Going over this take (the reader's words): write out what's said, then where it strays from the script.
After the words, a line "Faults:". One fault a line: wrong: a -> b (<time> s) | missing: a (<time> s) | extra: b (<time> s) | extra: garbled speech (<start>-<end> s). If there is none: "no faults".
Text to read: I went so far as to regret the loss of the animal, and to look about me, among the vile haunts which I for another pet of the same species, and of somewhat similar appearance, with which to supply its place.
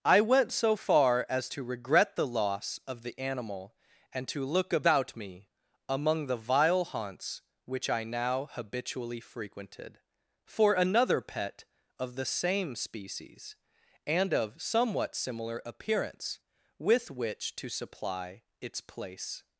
I went so far as to regret the loss of the animal, and to look about me, among the vile haunts which I now habitually frequented, for another pet of the same species, and of somewhat similar appearance, with which to supply its place.
Faults:
extra: now habitually frequented (8.0 s)